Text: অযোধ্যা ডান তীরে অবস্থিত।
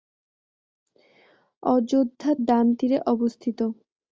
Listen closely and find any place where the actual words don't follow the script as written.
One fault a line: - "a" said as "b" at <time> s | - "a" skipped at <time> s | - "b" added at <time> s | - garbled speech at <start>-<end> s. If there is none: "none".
none